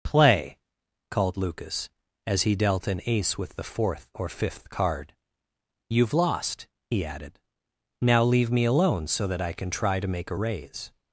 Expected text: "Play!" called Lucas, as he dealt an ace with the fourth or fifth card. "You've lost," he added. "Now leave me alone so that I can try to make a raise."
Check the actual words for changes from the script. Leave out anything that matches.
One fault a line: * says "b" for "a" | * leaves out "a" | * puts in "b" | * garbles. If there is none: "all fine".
all fine